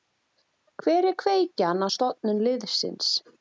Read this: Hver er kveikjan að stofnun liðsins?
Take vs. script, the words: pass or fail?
pass